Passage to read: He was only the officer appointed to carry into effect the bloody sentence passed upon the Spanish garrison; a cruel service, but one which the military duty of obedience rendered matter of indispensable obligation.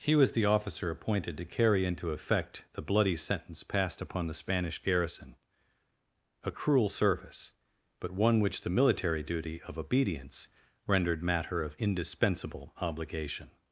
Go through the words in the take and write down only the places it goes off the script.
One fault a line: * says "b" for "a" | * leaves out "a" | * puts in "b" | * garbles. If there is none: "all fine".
* leaves out "only"